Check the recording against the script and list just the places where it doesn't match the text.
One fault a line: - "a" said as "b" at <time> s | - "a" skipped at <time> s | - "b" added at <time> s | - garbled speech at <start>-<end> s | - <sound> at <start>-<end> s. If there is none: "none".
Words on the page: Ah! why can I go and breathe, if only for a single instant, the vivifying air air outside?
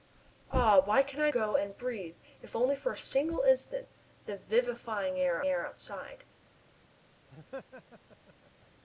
- laugh at 7.3-8.7 s